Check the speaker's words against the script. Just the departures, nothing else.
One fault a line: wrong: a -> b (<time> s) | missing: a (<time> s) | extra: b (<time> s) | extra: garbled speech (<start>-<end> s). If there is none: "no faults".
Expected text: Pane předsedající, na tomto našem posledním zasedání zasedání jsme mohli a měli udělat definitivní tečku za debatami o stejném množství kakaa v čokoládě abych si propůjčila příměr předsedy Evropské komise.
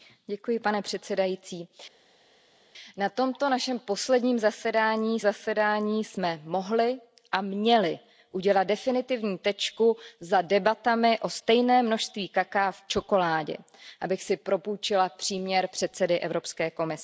no faults